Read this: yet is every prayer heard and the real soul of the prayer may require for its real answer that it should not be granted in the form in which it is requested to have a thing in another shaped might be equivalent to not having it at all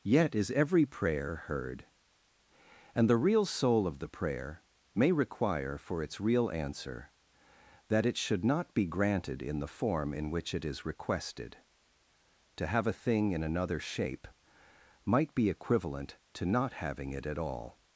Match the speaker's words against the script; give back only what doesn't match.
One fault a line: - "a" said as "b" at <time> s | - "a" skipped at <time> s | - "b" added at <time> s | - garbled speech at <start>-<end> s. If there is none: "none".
- "shaped" said as "shape" at 13.8 s